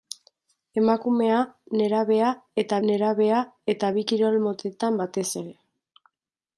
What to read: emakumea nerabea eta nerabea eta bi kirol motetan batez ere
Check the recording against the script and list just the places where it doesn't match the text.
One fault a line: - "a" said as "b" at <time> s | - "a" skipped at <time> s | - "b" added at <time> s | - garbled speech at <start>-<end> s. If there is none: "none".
none